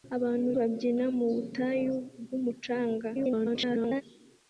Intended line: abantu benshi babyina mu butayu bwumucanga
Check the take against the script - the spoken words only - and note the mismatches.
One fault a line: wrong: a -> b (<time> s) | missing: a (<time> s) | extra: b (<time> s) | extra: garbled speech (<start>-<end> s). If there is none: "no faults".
missing: benshi (0.5 s)
extra: garbled speech (3.1-4.0 s)